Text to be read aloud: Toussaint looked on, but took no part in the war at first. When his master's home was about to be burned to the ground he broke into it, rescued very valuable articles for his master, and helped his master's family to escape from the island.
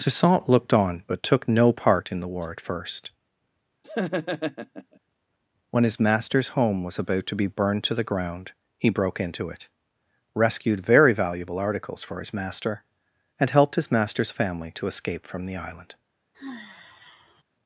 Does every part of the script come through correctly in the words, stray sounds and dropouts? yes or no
no